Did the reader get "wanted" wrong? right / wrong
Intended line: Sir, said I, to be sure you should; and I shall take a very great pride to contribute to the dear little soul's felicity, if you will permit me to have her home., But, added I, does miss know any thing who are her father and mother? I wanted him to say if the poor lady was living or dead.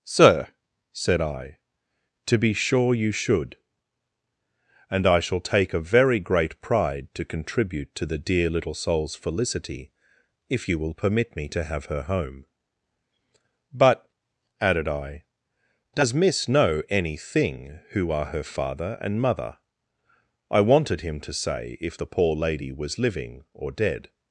right